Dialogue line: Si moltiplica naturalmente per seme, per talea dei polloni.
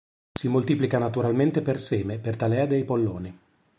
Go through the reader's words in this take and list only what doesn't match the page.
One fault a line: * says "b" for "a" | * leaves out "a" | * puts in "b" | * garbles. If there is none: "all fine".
all fine